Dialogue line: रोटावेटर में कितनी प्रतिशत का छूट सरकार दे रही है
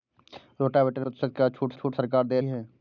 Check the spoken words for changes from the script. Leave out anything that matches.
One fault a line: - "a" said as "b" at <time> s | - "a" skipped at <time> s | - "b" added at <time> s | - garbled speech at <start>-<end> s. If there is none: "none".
- "में कितनी" skipped at 1.1 s
- "छूट" added at 1.7 s
- "रही" skipped at 2.4 s